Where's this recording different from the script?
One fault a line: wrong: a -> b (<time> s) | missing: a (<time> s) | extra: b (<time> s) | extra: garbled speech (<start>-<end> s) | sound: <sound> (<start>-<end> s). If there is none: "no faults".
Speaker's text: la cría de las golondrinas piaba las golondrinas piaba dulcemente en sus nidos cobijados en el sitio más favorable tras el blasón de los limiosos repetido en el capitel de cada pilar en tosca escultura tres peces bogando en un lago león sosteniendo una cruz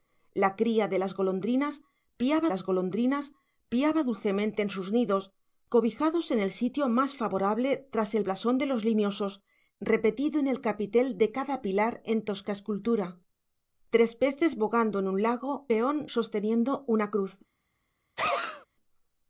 sound: sneeze (18.2-18.7 s)